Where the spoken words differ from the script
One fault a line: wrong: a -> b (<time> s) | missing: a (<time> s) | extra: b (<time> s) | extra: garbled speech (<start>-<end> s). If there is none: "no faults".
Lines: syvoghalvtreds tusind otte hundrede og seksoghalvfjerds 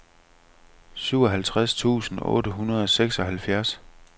no faults